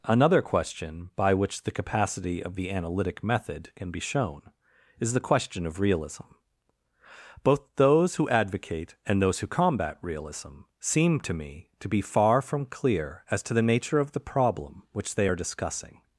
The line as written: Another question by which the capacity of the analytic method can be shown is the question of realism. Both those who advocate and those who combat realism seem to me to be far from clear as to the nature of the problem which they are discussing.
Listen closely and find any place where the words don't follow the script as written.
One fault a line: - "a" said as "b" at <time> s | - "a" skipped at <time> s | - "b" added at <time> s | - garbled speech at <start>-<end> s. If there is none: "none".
none